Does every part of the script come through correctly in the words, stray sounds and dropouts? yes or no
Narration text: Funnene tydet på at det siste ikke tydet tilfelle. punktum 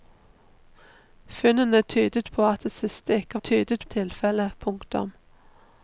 yes